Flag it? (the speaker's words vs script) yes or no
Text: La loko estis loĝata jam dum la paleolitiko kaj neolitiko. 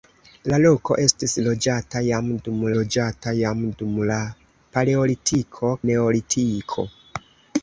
yes